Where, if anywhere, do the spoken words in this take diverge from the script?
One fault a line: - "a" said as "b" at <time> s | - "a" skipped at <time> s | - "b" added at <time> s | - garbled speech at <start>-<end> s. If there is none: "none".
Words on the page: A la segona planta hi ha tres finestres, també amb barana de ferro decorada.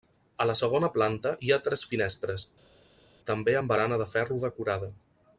none